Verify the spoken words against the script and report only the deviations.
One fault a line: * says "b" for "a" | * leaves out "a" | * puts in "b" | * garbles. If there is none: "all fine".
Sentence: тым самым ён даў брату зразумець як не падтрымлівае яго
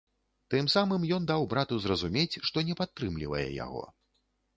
* says "што" for "як"